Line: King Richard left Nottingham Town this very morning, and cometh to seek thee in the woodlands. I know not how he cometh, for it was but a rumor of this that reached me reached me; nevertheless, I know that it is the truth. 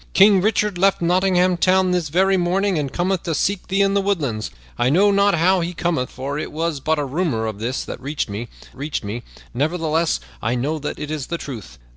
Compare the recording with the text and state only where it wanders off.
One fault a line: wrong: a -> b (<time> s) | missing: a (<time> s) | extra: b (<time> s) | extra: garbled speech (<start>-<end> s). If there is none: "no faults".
no faults